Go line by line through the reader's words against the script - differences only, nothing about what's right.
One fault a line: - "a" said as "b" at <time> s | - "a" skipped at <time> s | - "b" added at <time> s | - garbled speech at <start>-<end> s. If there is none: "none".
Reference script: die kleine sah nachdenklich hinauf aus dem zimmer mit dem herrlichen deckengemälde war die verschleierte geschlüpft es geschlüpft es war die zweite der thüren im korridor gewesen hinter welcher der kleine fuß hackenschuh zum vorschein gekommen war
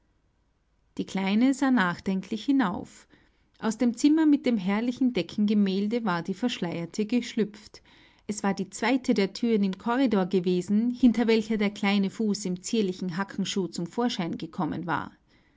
- "geschlüpft es" skipped at 8.4 s
- "im zierlichen" added at 12.5 s